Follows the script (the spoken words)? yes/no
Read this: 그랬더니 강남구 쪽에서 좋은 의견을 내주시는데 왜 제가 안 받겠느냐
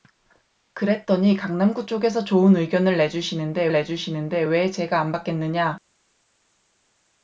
no